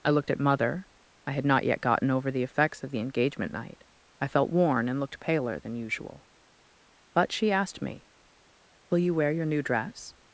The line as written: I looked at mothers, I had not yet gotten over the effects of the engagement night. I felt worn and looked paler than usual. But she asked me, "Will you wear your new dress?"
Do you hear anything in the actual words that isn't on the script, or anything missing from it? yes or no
yes